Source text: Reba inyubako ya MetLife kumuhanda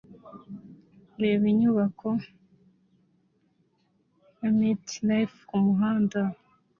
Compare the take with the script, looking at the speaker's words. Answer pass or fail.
pass